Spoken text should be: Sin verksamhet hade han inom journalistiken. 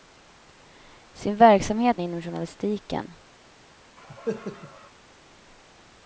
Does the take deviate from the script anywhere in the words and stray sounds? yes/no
yes